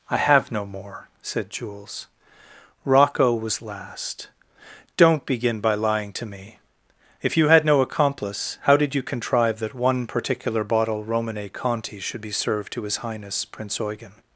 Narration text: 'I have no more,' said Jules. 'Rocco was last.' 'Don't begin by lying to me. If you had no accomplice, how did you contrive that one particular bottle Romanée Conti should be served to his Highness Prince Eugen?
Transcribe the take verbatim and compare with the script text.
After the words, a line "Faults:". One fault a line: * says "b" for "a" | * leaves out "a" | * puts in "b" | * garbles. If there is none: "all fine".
'I have no more,' said Jules. 'Rocco was last.' 'Don't begin by lying to me. If you had no accomplice, how did you contrive that one particular bottle Romanée Conti should be served to his Highness Prince Eugen?
Faults:
all fine